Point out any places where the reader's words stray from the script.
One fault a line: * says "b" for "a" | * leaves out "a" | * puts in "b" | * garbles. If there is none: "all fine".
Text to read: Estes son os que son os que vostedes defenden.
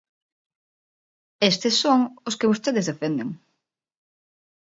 * leaves out "son os que"